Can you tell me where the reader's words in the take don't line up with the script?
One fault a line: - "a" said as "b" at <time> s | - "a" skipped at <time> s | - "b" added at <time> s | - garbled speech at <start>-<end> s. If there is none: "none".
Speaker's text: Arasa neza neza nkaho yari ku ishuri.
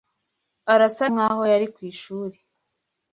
- "neza neza" skipped at 1.1 s